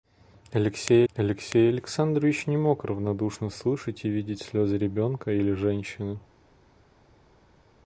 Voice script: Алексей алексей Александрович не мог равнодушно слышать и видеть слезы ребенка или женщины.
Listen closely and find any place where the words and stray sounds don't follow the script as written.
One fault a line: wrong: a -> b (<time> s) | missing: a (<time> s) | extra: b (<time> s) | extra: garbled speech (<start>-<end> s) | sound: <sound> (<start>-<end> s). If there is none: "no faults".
no faults